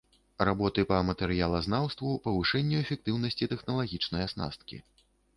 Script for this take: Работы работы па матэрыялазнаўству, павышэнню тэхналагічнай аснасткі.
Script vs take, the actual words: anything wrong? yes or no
yes